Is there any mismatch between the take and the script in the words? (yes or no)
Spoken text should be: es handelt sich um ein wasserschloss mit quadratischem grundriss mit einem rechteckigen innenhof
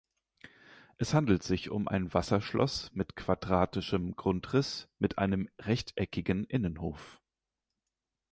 no